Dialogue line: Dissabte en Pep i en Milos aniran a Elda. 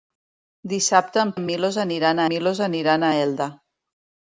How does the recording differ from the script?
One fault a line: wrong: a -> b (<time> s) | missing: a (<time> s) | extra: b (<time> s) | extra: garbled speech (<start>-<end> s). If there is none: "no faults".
missing: Pep (1.3 s)
extra: Milos aniran (2.3 s)